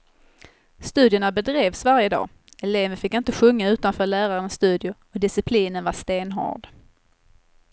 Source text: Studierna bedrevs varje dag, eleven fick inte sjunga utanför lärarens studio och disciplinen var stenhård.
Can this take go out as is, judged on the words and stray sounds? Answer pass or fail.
pass